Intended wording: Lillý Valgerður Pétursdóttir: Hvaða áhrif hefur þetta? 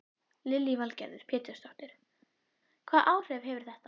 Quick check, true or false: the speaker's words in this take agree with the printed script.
true